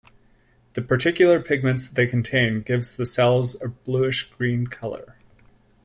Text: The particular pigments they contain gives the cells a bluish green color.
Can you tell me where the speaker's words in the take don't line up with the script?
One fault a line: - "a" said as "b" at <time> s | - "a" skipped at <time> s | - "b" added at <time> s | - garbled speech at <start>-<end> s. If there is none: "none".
none